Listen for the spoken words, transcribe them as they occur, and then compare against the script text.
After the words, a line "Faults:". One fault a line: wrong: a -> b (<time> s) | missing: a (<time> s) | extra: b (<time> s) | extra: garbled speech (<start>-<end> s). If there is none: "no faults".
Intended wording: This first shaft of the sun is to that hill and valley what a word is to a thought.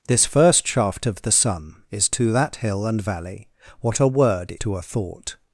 This first shaft of the sun is to that hill and valley what a word to a thought.
Faults:
missing: is (4.5 s)